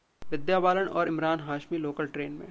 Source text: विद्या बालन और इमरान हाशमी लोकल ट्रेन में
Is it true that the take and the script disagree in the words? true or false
false